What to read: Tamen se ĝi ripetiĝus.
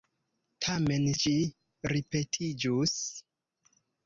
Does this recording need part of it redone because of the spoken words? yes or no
yes